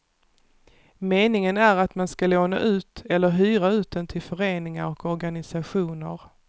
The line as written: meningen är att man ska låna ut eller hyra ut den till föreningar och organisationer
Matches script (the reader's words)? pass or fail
pass